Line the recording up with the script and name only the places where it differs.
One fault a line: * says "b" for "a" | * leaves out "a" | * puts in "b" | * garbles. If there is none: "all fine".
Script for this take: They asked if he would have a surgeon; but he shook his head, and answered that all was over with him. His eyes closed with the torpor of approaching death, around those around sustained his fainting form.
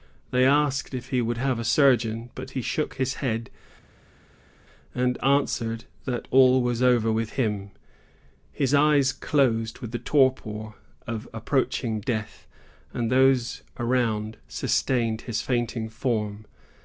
* says "and" for "around"